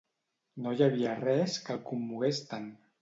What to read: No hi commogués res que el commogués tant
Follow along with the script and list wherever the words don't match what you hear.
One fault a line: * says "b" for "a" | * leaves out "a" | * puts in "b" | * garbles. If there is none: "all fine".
* says "havia" for "commogués"